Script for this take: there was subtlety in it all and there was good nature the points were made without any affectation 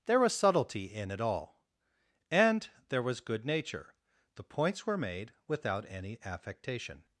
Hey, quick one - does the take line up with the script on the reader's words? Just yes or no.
yes